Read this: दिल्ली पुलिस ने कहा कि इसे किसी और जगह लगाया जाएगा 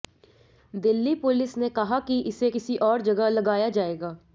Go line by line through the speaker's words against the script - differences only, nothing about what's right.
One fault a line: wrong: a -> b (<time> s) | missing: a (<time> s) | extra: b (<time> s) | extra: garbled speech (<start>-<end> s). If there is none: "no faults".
no faults